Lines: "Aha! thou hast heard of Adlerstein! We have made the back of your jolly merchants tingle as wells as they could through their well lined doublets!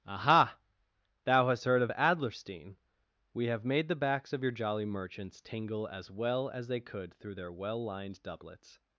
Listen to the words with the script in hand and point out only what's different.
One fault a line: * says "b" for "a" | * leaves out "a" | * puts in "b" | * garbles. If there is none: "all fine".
* says "backs" for "back"
* says "well" for "wells"